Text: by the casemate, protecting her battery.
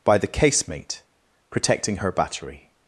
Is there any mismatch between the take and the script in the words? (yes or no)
no